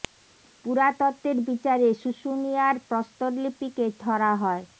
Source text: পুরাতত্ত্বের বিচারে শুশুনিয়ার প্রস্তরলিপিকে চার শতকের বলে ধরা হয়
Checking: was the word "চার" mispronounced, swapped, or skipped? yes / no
yes